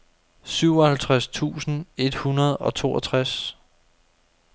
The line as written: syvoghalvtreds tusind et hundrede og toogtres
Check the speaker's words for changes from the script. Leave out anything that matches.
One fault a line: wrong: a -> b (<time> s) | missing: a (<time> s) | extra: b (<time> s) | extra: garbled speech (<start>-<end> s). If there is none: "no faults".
no faults